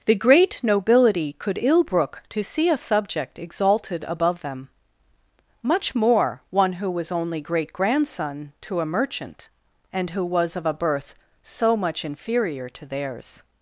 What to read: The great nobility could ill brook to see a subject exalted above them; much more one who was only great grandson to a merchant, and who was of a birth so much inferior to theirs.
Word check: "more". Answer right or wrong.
right